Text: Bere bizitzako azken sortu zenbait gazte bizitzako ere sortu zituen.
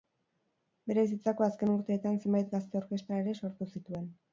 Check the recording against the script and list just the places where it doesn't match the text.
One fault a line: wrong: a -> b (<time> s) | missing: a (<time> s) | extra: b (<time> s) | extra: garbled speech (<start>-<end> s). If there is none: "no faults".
wrong: sortu -> urteetan (1.8 s)
wrong: bizitzako -> orkestra (2.9 s)